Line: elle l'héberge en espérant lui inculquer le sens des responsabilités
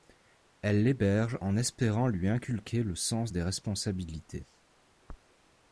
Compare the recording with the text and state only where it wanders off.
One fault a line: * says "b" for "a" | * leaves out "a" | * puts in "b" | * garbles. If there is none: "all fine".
all fine